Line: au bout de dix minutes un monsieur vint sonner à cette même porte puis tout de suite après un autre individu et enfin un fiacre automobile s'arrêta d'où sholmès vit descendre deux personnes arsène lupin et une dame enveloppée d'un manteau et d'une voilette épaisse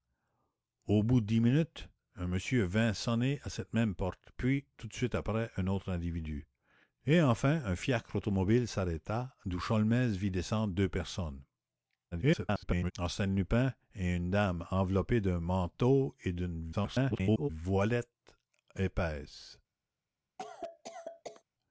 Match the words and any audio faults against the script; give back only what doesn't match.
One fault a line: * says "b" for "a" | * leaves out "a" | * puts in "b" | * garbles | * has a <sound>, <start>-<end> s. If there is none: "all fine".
* garbles
* garbles
* has a cough, 20.4-21.4 s